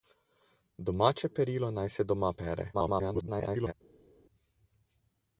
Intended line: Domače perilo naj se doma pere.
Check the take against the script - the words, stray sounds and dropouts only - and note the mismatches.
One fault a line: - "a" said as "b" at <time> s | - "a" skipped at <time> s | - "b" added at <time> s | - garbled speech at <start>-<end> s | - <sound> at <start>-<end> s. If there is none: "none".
- garbled speech at 2.7-3.7 s